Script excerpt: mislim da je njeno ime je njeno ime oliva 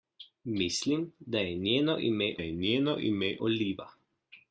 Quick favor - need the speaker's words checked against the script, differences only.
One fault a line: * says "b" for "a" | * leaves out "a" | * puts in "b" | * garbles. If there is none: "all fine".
all fine